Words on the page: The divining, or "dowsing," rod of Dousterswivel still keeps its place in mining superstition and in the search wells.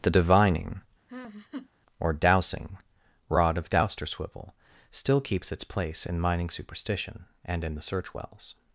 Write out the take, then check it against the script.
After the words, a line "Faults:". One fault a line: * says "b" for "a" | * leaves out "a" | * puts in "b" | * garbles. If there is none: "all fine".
The divining, or "dowsing," rod of Dousterswivel still keeps its place in mining superstition and in the search wells.
Faults:
all fine